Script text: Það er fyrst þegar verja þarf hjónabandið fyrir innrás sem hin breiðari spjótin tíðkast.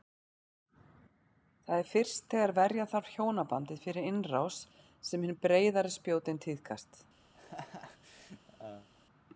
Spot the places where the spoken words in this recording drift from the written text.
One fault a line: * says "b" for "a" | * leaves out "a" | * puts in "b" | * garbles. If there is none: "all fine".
all fine